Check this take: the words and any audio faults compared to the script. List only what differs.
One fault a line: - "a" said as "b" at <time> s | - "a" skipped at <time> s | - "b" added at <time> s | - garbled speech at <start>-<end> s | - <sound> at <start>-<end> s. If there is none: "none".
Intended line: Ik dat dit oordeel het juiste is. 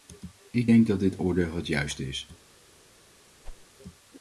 - "denk" added at 0.6 s
- whoosh at 3.4-3.7 s